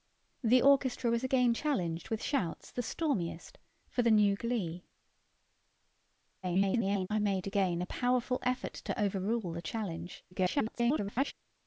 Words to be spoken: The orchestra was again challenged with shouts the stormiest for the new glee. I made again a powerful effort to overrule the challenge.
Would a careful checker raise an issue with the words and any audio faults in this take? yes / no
yes